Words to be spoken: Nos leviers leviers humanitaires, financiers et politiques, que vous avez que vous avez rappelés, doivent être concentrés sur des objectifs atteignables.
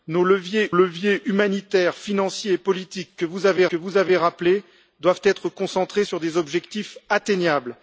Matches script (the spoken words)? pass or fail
pass